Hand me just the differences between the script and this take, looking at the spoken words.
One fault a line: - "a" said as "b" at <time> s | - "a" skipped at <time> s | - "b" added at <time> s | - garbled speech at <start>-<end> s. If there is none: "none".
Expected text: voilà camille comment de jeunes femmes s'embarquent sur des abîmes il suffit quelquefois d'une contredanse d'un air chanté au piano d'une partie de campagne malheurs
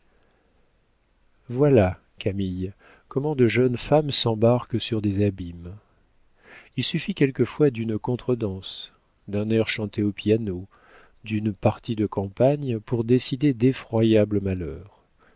- "pour décider d'effroyables" added at 12.8 s